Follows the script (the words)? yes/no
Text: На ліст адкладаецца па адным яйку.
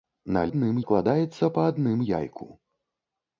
no